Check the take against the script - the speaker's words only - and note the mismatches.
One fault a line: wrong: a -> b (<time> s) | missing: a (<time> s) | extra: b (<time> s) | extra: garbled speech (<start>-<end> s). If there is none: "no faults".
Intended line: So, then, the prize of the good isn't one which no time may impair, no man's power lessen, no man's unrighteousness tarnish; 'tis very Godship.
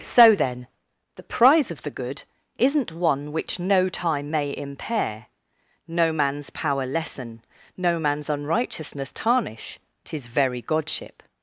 no faults